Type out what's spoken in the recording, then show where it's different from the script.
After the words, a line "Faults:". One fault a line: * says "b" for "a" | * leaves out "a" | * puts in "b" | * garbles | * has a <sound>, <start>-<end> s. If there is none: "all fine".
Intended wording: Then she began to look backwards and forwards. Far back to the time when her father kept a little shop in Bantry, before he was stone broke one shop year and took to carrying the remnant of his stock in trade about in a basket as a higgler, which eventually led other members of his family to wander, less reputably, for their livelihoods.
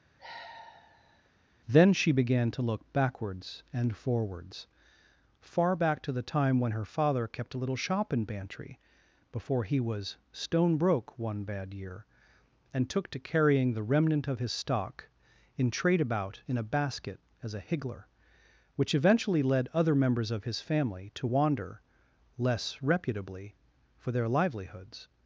Then she began to look backwards and forwards. Far back to the time when her father kept a little shop in Bantry, before he was stone broke one bad year and took to carrying the remnant of his stock in trade about in a basket as a higgler, which eventually led other members of his family to wander, less reputably, for their livelihoods.
Faults:
* has a sigh, 0.2-1.3 s
* says "bad" for "shop"